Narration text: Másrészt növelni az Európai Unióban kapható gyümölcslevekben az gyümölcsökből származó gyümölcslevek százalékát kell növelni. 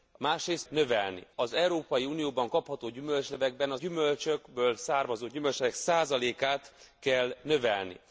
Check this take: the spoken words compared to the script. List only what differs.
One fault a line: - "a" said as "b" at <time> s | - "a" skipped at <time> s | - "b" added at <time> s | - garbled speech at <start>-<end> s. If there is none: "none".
none